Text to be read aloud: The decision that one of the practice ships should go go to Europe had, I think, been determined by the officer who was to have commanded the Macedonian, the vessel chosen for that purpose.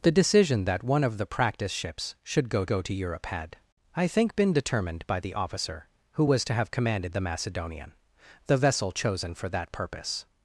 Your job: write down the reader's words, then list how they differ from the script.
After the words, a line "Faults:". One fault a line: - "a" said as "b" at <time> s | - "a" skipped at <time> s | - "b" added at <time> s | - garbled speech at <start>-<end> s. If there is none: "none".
The decision that one of the practice ships should go go to Europe had, I think, been determined by the officer who was to have commanded the Macedonian, the vessel chosen for that purpose.
Faults:
none